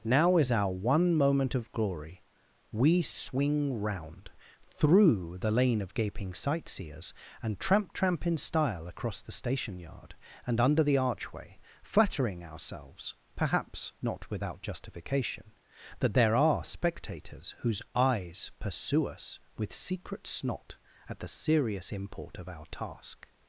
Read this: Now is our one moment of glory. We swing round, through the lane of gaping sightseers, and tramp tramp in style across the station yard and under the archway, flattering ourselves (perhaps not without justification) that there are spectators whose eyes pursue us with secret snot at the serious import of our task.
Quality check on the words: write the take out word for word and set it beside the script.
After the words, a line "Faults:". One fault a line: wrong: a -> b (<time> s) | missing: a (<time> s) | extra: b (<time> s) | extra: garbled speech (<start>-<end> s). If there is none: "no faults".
Now is our one moment of glory. We swing round, through the lane of gaping sightseers, and tramp tramp in style across the station yard and under the archway, flattering ourselves (perhaps not without justification) that there are spectators whose eyes pursue us with secret snot at the serious import of our task.
Faults:
no faults